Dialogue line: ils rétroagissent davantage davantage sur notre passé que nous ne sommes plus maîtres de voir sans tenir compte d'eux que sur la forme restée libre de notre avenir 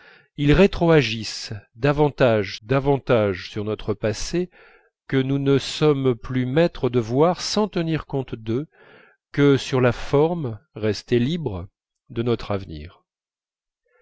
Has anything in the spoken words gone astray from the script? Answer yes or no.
no